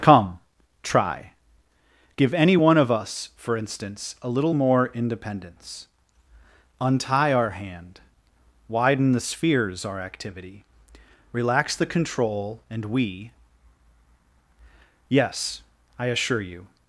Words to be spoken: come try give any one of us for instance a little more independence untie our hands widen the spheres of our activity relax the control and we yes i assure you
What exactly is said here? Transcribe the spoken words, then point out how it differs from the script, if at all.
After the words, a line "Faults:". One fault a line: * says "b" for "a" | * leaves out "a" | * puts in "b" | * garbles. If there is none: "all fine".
come try give any one of us for instance a little more independence untie our hand widen the spheres our activity relax the control and we yes i assure you
Faults:
* says "hand" for "hands"
* leaves out "of"